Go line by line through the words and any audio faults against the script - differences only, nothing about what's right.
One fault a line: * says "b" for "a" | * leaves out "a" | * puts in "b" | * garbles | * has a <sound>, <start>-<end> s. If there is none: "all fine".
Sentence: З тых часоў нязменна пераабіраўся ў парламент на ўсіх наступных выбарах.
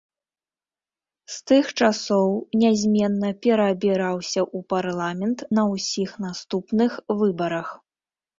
all fine